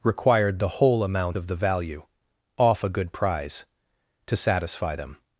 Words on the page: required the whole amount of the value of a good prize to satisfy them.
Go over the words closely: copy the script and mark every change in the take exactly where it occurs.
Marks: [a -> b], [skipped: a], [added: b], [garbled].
required the whole amount of the value [of -> off] a good prize to satisfy them.